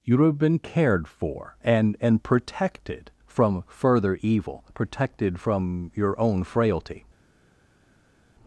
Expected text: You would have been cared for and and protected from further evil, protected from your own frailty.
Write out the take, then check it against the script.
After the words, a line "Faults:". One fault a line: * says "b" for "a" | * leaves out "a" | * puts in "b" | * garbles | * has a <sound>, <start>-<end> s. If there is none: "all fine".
You would have been cared for and and protected from further evil, protected from your own frailty.
Faults:
all fine